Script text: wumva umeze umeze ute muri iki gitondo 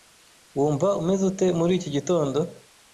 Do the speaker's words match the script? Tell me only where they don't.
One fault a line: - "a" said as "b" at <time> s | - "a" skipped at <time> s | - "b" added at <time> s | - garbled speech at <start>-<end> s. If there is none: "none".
- "umeze" skipped at 1.2 s